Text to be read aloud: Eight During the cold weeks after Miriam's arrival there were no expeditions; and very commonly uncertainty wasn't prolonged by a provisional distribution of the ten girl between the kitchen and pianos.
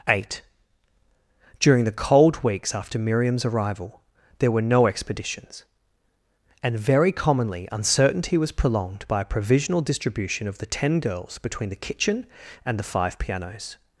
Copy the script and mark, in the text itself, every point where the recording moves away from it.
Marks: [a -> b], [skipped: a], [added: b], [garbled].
Eight During the cold weeks after Miriam's arrival there were no expeditions; and very commonly uncertainty [wasn't -> was] prolonged by a provisional distribution of the ten [girl -> girls] between the kitchen and [added: the five] pianos.